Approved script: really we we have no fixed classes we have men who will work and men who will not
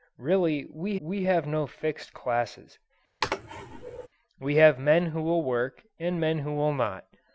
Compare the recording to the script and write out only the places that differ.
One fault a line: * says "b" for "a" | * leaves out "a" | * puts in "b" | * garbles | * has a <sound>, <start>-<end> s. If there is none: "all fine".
* has a sneeze, 3.2-4.1 s